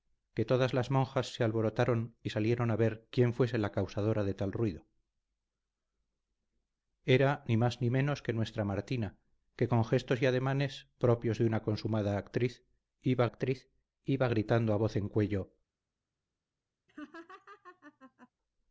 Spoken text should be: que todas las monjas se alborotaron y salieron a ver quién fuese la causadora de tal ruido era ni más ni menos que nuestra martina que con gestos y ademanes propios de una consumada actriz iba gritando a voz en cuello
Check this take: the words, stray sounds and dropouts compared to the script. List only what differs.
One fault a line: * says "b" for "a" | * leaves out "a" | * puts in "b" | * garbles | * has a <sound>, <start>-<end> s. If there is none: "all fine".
* puts in "actriz iba"
* has a laugh, 16.9-18.3 s